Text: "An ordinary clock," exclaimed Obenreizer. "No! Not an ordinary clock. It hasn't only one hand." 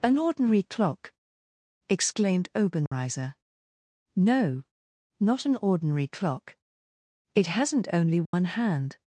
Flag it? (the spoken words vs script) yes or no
no